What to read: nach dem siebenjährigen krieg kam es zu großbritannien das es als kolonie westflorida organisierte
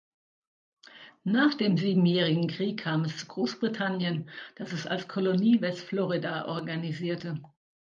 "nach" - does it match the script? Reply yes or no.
yes